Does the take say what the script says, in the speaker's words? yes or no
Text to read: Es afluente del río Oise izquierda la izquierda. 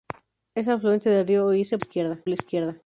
yes